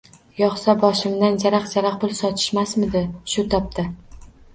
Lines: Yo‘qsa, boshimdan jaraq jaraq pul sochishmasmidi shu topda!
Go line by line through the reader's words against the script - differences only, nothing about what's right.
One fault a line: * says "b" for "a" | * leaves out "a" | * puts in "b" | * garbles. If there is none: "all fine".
all fine